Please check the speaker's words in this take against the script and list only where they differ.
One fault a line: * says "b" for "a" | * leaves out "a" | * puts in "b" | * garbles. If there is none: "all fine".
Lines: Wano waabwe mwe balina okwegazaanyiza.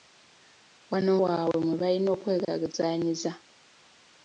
all fine